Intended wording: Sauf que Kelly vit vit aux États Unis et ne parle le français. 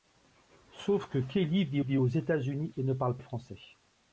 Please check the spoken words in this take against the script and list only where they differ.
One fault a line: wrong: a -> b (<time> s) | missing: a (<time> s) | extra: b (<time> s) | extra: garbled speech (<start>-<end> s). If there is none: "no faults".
no faults